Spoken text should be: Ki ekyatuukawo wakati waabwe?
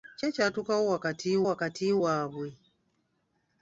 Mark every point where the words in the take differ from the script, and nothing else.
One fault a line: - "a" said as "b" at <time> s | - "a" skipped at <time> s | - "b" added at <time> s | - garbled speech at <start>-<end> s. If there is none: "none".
- "wakati" added at 1.5 s